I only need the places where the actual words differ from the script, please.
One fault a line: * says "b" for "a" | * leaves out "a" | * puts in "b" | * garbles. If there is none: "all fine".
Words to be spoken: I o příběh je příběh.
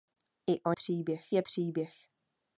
all fine